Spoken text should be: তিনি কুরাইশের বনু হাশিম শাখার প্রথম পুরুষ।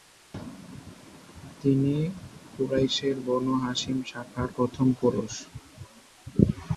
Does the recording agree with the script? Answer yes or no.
yes